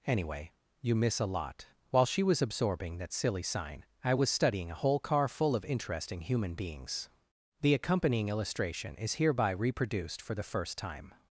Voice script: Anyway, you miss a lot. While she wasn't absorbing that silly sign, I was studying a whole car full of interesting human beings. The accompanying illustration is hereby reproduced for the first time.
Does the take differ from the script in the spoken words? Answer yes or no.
yes